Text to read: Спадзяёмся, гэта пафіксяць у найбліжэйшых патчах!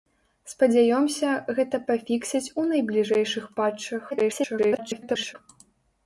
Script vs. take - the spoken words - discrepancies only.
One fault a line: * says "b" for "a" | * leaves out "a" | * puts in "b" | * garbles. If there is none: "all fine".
* garbles